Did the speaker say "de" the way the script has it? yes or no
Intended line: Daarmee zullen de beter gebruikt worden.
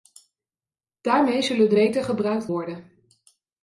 yes